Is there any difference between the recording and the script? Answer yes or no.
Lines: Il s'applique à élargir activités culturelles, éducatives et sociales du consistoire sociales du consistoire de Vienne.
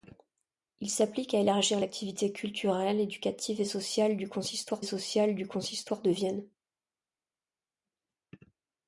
no